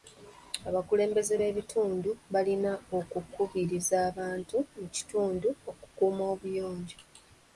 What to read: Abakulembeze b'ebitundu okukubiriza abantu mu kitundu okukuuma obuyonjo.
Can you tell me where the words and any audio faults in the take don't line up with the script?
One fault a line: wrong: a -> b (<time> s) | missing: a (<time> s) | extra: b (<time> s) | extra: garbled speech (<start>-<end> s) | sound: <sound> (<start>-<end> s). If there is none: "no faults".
extra: balina (2.3 s)